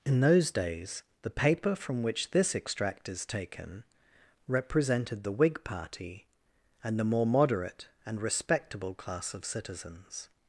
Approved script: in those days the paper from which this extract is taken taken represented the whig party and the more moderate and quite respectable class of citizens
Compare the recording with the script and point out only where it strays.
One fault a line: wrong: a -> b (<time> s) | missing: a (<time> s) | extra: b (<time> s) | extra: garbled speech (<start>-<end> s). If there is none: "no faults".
missing: taken (3.8 s)
missing: quite (8.2 s)